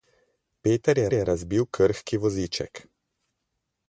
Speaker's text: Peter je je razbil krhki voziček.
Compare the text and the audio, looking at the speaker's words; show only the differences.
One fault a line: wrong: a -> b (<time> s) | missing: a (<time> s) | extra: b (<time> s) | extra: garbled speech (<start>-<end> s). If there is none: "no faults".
no faults